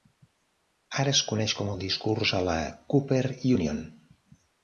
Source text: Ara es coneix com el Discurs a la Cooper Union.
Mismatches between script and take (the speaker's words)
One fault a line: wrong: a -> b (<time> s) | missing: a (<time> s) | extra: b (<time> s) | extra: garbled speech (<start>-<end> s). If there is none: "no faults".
no faults